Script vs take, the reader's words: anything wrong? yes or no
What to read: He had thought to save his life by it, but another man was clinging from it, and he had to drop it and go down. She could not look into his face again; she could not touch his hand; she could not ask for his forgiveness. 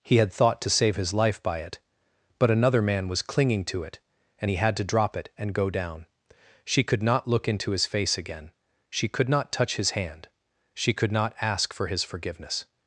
yes